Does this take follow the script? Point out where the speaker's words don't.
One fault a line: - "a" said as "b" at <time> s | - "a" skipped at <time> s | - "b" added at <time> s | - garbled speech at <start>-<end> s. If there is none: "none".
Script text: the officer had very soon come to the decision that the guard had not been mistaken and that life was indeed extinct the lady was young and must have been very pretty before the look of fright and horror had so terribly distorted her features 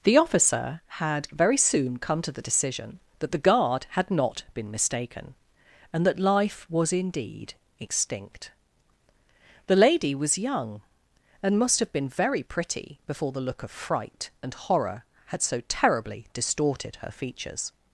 none